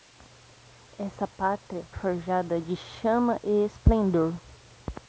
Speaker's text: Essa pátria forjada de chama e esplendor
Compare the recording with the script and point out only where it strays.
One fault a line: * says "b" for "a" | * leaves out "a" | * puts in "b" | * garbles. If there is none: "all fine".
all fine